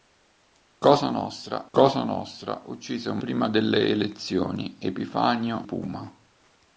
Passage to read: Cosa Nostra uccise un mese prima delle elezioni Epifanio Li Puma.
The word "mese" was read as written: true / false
false